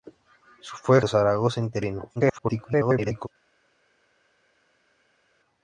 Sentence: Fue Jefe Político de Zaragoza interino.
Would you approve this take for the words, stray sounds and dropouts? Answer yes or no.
no